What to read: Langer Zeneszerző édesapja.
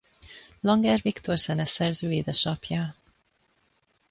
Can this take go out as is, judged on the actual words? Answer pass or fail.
fail